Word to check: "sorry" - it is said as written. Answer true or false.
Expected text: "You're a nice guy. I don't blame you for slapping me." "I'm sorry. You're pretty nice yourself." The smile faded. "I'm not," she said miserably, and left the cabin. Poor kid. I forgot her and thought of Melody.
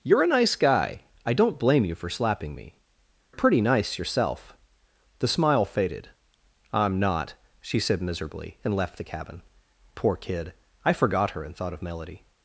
false